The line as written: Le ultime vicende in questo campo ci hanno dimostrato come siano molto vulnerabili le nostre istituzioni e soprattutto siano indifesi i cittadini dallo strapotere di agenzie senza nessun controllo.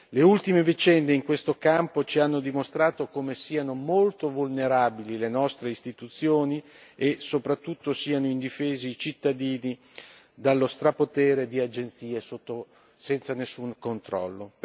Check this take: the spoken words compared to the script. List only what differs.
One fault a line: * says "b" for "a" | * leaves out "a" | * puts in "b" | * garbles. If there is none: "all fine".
all fine